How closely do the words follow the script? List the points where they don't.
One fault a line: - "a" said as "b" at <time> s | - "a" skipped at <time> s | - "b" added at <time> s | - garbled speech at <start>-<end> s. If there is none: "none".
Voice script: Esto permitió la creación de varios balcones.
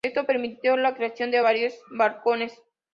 none